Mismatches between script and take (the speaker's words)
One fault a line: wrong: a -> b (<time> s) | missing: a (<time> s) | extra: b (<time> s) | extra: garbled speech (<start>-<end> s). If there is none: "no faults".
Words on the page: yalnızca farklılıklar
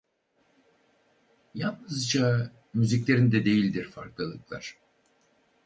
extra: müziklerinde değildir (2.7 s)